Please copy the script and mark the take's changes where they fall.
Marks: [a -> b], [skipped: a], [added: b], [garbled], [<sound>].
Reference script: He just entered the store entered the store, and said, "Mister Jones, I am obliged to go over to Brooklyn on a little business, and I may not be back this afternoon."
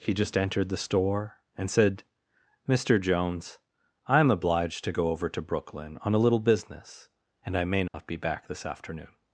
He just entered the store [skipped: entered the store,] and said, "Mister Jones, I am obliged to go over to Brooklyn on a little business, and I may not [dropout] be back this afternoon."